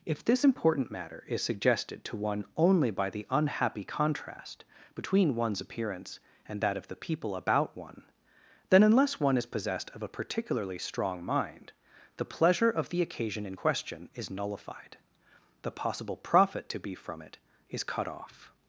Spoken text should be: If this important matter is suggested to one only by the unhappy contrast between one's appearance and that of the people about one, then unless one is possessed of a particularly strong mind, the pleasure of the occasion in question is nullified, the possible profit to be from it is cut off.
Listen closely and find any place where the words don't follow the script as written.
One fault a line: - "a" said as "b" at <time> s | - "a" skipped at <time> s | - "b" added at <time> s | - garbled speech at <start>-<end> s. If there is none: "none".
none